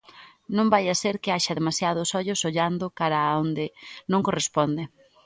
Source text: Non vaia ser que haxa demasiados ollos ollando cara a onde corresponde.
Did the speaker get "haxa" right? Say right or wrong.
right